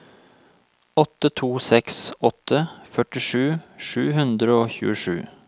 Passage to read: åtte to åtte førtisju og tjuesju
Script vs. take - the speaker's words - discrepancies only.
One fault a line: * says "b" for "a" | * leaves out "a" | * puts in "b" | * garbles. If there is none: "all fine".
* puts in "seks"
* puts in "sju hundre"